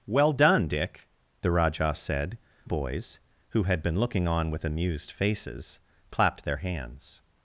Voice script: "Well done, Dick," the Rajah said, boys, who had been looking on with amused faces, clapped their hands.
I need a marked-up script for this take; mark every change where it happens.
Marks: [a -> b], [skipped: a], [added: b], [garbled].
"Well done, Dick," the Rajah said, boys, who had been looking on with amused faces, clapped their hands.